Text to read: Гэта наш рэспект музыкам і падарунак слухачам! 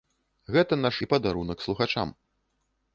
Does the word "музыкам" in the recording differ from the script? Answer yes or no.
yes